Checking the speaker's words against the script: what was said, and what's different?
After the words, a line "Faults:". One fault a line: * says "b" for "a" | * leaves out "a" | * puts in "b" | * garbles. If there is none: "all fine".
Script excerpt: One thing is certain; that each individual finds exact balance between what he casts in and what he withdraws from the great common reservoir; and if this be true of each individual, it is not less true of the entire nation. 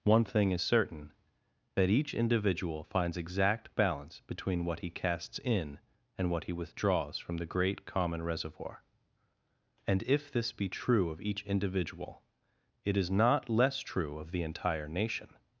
One thing is certain; that each individual finds exact balance between what he casts in and what he withdraws from the great common reservoir; and if this be true of each individual, it is not less true of the entire nation.
Faults:
all fine